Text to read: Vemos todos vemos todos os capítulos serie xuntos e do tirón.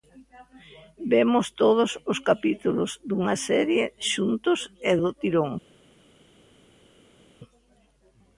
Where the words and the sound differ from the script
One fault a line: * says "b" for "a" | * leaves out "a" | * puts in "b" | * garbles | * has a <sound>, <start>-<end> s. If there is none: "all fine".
* leaves out "vemos todos"
* puts in "dunha"